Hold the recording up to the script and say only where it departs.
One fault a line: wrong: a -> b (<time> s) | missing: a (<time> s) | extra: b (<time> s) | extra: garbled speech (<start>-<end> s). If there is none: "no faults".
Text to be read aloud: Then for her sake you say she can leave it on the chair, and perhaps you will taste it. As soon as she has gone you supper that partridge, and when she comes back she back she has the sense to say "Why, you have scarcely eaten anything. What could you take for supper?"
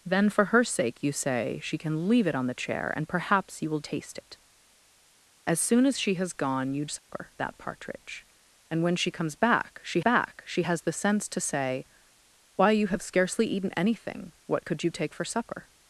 no faults